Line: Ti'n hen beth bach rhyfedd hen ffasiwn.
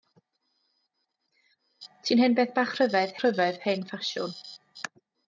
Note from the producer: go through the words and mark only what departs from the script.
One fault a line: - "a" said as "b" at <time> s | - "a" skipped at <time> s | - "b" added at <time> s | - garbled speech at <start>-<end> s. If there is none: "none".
- "rhyfedd" added at 3.2 s